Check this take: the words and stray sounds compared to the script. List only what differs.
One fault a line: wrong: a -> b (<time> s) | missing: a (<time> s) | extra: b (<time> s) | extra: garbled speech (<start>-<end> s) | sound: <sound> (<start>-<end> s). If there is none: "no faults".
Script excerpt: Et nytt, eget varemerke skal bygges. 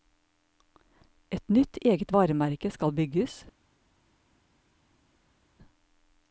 no faults